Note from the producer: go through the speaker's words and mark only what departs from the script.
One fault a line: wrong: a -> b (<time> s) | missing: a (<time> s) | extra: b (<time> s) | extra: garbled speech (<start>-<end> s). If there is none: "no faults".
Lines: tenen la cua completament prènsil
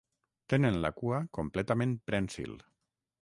no faults